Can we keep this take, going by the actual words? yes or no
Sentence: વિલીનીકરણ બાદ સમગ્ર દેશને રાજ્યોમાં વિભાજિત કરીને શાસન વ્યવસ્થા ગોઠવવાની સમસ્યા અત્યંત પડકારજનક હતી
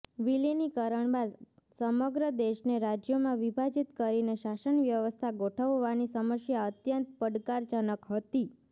yes